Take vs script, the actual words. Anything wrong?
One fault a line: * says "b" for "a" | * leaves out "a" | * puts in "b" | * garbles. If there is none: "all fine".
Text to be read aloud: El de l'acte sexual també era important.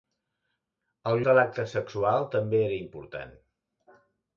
all fine